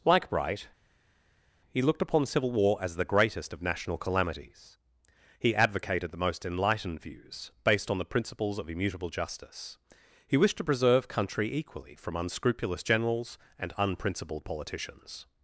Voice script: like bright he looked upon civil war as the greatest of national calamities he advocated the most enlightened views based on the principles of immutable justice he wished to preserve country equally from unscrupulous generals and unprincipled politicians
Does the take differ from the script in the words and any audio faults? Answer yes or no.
no